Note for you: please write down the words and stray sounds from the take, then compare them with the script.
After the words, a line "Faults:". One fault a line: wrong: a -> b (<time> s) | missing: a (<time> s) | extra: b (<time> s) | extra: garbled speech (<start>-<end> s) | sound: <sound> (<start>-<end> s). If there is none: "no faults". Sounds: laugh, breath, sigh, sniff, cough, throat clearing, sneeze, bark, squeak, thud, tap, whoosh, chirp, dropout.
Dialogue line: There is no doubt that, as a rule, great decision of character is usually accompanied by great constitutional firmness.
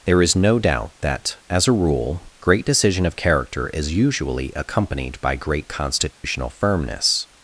There is no doubt that, as a rule, great decision of character is usually accompanied by great constitutional firmness.
Faults:
sound: dropout (6.1-6.2 s)